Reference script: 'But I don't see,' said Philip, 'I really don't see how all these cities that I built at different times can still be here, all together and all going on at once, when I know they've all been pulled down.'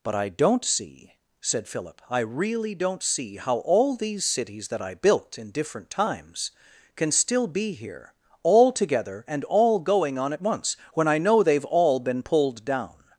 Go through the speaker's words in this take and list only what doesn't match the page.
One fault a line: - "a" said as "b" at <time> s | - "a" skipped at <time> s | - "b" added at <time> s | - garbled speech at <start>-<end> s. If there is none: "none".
- "at" said as "in" at 5.4 s